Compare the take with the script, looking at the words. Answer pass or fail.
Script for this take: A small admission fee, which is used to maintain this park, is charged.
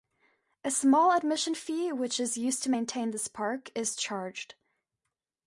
pass